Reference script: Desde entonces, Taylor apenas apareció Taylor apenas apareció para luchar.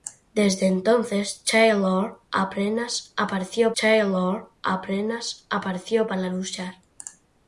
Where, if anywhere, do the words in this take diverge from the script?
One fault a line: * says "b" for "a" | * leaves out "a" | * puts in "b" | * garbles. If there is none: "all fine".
all fine